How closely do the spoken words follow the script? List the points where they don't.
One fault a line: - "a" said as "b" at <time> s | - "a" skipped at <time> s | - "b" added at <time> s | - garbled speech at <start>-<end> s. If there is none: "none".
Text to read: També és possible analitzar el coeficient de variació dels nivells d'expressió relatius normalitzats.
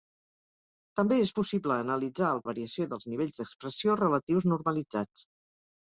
- "coeficient" skipped at 2.4 s